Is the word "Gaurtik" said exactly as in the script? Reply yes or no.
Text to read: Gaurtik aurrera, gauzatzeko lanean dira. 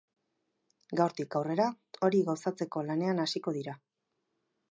yes